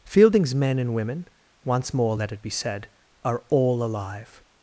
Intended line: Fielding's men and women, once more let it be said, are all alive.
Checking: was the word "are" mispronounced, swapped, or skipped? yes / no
no